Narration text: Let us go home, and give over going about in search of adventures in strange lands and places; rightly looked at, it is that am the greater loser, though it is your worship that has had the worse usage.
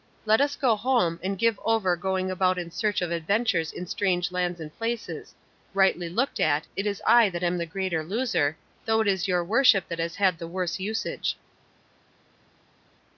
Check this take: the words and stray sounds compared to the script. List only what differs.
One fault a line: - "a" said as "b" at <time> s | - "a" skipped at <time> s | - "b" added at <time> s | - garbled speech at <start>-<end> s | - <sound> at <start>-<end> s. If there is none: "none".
- "I" added at 7.0 s